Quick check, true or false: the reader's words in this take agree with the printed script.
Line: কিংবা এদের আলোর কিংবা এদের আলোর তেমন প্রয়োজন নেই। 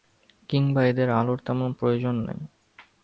false